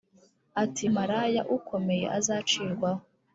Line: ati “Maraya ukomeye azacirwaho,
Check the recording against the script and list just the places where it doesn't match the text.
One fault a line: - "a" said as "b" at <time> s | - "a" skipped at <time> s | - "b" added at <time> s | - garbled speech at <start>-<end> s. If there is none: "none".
none